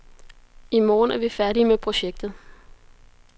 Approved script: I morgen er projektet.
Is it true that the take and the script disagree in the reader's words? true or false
true